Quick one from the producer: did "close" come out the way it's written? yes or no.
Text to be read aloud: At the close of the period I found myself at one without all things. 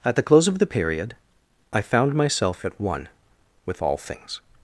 yes